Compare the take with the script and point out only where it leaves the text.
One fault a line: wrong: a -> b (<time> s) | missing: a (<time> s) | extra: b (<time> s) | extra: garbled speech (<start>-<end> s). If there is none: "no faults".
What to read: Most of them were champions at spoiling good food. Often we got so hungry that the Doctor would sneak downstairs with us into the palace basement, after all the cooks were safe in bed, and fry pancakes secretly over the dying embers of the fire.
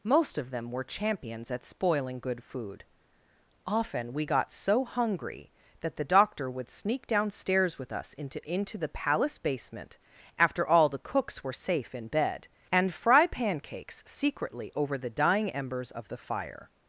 extra: into (8.5 s)